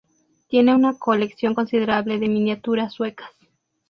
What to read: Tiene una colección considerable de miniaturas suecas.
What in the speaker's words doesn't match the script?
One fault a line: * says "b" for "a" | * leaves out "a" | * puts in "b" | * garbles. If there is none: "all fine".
all fine